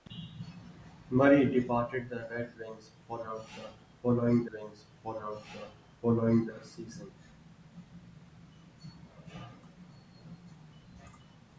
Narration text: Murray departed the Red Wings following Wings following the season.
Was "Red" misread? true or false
false